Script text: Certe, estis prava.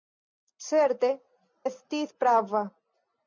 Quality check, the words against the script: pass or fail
pass